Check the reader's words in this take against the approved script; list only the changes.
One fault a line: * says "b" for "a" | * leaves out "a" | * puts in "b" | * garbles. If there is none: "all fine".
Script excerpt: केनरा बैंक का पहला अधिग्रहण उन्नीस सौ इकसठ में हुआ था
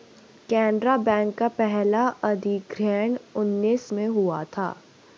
* leaves out "सौ इकसठ"